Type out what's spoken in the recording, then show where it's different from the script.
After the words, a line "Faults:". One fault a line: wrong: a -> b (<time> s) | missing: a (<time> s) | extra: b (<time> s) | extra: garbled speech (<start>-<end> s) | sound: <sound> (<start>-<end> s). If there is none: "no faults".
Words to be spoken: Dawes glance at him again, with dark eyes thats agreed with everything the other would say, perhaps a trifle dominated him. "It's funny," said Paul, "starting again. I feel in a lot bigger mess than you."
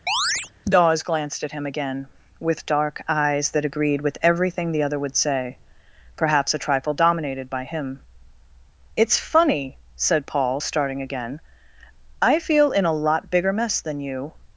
Dawes glanced at him again, with dark eyes that agreed with everything the other would say, perhaps a trifle dominated by him. "It's funny," said Paul, "starting again. I feel in a lot bigger mess than you."
Faults:
sound: chirp (0.1-0.5 s)
wrong: glance -> glanced (1.0 s)
wrong: thats -> that (3.5 s)
extra: by (7.5 s)